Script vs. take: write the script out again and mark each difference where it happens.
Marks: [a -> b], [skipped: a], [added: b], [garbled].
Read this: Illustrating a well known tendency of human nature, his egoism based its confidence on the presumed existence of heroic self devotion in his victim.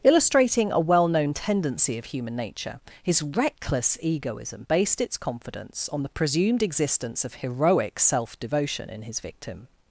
Illustrating a well known tendency of human nature, his [added: reckless] egoism based its confidence on the presumed existence of heroic self devotion in his victim.